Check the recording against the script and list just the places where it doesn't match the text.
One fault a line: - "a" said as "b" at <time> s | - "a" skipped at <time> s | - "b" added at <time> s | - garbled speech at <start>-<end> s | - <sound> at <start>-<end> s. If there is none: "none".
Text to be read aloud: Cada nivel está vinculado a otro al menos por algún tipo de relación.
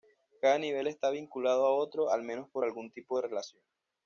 none